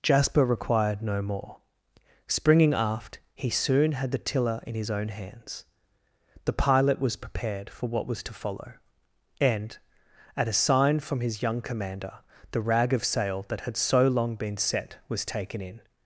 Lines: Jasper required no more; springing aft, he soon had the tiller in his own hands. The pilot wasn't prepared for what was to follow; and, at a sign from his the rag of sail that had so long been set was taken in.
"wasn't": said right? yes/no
no